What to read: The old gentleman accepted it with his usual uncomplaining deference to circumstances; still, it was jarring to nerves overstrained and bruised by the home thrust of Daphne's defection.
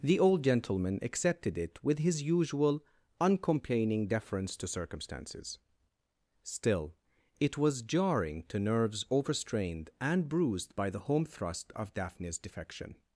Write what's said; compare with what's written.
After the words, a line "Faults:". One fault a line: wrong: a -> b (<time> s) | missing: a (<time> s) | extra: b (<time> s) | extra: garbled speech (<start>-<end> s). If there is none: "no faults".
The old gentleman accepted it with his usual uncomplaining deference to circumstances; still, it was jarring to nerves overstrained and bruised by the home thrust of Daphne's defection.
Faults:
no faults